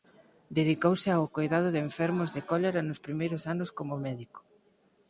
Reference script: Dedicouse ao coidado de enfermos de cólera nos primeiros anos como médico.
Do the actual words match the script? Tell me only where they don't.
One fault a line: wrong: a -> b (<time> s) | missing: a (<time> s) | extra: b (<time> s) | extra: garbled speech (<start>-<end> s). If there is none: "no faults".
no faults